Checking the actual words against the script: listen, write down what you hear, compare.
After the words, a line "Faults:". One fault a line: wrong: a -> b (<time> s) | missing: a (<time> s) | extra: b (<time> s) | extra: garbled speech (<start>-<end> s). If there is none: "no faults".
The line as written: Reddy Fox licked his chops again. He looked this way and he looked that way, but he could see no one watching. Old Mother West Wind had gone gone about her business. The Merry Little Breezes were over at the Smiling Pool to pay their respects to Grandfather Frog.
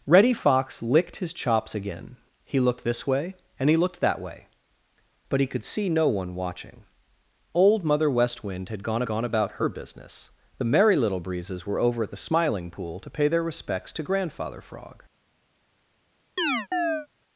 Reddy Fox licked his chops again. He looked this way and he looked that way, but he could see no one watching. Old Mother West Wind had gone gone about her business. The Merry Little Breezes were over at the Smiling Pool to pay their respects to Grandfather Frog.
Faults:
no faults